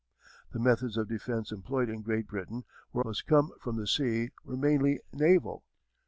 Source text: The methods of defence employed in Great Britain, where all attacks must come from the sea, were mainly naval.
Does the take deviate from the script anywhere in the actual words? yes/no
yes